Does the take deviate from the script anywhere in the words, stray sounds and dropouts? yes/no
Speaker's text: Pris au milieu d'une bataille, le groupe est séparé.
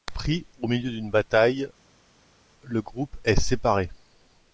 no